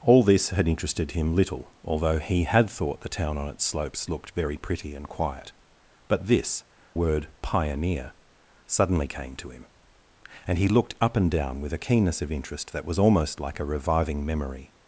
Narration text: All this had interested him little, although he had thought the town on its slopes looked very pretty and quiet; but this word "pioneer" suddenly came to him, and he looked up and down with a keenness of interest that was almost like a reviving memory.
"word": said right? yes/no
yes